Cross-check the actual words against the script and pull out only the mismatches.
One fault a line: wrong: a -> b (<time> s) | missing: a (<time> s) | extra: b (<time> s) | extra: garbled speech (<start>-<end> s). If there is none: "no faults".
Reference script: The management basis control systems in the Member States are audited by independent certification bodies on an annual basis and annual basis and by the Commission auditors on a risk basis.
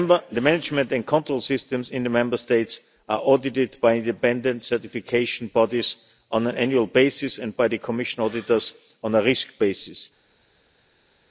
wrong: basis -> and (0.9 s)
missing: annual basis and (7.5 s)